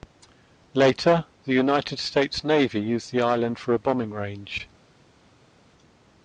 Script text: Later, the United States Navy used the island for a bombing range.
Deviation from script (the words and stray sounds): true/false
false